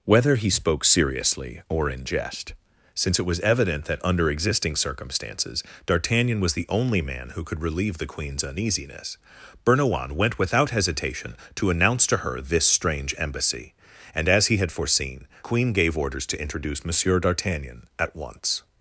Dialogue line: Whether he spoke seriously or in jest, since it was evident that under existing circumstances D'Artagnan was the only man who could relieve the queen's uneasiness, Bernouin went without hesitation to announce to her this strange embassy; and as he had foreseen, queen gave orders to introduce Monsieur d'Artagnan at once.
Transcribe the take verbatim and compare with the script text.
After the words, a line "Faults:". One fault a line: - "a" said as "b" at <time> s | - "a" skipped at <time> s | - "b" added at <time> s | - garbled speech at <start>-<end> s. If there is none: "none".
Whether he spoke seriously or in jest, since it was evident that under existing circumstances D'Artagnan was the only man who could relieve the queen's uneasiness, Bernouin went without hesitation to announce to her this strange embassy; and as he had foreseen, queen gave orders to introduce Monsieur d'Artagnan at once.
Faults:
none